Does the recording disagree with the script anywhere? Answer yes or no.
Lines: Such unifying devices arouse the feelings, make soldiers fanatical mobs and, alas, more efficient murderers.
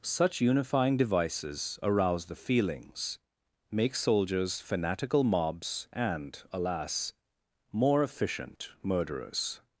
no